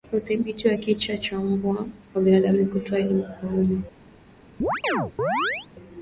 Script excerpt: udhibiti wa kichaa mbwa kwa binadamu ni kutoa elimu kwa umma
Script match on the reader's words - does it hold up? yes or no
no